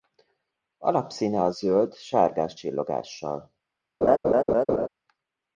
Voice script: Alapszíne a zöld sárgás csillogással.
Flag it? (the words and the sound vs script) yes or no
yes